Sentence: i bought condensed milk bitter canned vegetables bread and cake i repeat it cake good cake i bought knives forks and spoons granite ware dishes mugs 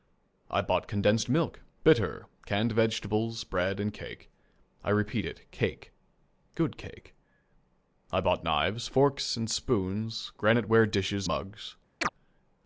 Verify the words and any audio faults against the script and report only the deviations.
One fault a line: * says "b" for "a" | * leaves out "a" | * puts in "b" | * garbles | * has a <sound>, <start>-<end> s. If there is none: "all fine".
* has a chirp, 12.0-12.1 s